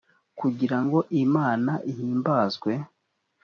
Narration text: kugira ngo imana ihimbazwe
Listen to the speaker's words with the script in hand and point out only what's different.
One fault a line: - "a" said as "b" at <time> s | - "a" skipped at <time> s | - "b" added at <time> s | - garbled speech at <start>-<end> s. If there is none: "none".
none